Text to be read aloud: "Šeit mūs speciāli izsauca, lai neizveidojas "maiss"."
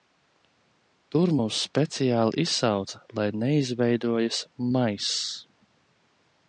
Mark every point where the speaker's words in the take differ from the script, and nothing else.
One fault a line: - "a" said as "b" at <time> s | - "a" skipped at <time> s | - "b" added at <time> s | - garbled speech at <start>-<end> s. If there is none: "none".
- "Šeit" said as "Tur" at 1.1 s